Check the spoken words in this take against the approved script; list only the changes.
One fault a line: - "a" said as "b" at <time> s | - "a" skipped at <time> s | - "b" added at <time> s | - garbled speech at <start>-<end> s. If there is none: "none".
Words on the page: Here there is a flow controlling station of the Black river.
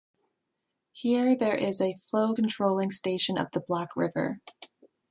none